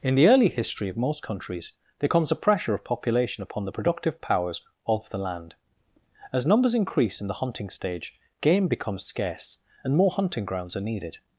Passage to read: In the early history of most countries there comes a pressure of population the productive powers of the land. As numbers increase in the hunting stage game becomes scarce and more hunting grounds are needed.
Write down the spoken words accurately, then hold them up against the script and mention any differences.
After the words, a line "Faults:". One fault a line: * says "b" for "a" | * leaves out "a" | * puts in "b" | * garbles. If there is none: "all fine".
In the early history of most countries there comes a pressure of population upon the productive powers of the land. As numbers increase in the hunting stage game becomes scarce and more hunting grounds are needed.
Faults:
* puts in "upon"